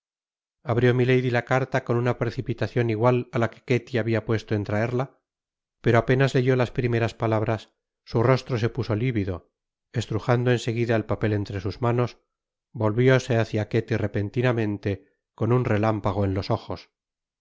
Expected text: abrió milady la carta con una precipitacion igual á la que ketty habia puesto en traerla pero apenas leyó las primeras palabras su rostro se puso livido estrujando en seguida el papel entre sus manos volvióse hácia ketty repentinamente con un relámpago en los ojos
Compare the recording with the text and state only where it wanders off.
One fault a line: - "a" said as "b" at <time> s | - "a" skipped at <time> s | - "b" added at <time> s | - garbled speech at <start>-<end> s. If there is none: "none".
none